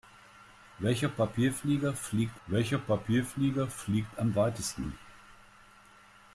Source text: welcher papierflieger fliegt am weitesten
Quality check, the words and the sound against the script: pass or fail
fail